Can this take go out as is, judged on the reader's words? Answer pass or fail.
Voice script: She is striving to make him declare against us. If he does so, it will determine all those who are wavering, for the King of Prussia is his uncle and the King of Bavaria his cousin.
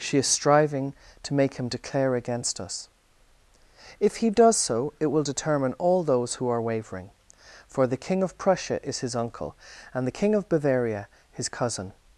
pass